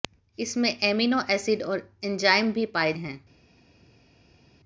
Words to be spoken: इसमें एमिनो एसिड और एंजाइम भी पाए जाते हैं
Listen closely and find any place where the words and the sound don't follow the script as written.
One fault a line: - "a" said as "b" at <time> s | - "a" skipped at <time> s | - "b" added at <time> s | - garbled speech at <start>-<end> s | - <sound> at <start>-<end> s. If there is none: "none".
- "जाते" skipped at 2.9 s